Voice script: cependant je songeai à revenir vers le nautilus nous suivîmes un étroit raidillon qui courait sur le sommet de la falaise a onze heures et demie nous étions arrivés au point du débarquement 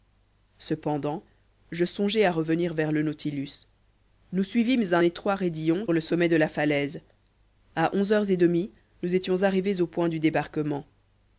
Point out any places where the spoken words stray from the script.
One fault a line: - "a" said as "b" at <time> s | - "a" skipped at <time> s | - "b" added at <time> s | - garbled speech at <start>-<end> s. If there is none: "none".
- "qui courait sur" skipped at 5.9 s